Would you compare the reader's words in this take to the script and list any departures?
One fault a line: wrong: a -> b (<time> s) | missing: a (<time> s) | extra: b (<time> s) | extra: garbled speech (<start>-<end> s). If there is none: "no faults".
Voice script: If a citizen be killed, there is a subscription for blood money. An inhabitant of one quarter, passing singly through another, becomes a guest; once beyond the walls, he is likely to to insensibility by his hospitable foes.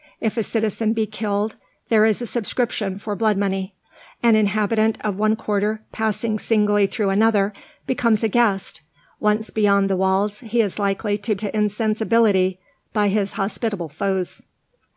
no faults